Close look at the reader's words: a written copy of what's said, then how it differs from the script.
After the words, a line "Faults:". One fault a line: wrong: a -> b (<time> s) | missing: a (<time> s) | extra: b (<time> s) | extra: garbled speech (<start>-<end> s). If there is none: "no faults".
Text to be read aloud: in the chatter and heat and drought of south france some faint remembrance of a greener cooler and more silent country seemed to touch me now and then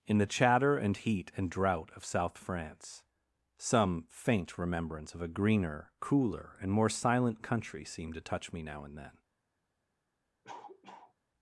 in the chatter and heat and drought of south france some faint remembrance of a greener cooler and more silent country seemed to touch me now and then
Faults:
no faults